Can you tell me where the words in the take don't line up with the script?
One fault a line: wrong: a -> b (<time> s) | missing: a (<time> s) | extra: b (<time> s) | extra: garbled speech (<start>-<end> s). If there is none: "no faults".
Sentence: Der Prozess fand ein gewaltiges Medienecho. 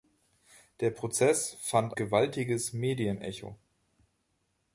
missing: ein (1.9 s)